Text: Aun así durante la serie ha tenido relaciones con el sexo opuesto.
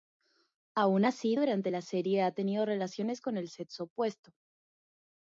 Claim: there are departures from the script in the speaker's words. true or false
false